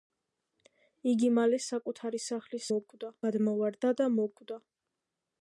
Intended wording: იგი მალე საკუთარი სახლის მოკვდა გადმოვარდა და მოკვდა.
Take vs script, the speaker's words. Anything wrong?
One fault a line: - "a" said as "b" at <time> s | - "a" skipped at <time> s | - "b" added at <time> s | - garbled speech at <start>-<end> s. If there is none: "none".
none